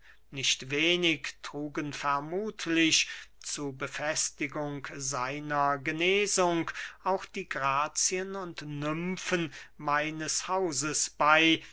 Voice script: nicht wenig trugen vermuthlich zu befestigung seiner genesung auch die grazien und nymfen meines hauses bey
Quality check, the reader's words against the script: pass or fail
pass